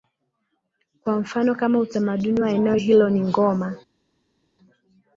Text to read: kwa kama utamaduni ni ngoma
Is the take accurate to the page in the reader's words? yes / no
no